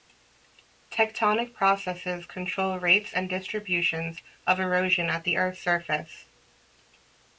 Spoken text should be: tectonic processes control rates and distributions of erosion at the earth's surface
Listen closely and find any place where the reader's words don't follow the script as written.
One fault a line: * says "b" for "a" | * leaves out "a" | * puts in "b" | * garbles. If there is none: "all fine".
all fine